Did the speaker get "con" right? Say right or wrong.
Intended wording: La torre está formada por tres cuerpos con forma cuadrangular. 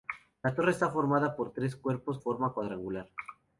wrong